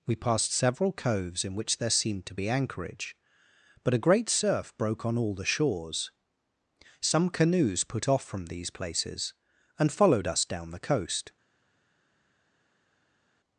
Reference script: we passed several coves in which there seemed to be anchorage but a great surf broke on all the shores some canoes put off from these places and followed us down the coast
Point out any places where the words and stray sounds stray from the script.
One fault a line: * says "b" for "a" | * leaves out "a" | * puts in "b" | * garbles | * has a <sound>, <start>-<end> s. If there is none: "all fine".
all fine